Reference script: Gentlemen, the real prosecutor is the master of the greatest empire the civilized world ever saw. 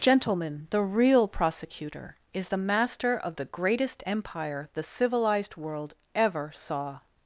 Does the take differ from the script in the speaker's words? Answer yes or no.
no